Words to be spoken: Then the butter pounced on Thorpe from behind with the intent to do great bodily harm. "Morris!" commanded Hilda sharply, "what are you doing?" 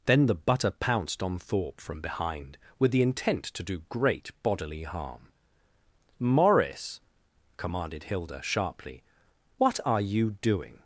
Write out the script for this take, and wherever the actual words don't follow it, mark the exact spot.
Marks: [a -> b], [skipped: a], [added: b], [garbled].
Then the butter pounced on Thorpe from behind with the intent to do great bodily harm. "Morris!" commanded Hilda sharply, "what are you doing?"